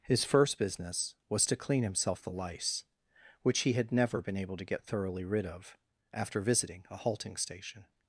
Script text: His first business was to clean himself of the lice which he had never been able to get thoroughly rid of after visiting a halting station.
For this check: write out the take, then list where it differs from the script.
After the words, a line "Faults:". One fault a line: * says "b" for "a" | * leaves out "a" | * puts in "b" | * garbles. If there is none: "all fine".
His first business was to clean himself the lice which he had never been able to get thoroughly rid of after visiting a halting station.
Faults:
* leaves out "of"